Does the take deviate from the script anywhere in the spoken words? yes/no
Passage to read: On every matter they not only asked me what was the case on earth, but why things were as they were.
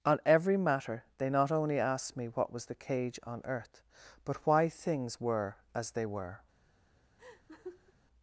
yes